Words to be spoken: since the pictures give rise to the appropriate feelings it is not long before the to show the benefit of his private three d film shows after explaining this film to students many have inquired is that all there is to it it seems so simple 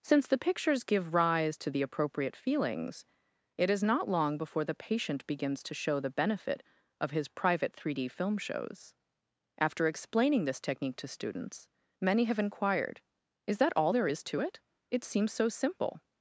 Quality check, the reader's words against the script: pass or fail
fail